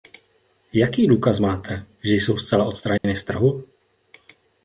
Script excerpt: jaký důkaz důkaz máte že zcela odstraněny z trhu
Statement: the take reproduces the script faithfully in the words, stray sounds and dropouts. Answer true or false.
false